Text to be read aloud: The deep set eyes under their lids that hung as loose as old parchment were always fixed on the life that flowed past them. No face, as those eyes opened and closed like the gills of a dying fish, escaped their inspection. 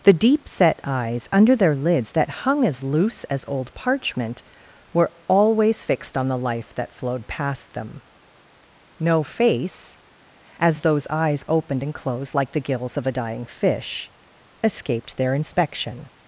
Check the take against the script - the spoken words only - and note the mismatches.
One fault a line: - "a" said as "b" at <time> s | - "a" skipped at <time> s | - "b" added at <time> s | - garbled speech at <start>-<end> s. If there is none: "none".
none